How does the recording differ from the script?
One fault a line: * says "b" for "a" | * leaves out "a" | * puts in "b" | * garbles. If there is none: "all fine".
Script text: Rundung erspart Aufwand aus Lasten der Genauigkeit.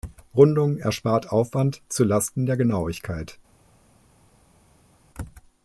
* says "zu" for "aus"